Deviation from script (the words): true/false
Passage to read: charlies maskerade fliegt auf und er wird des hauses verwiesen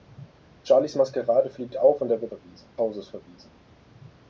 true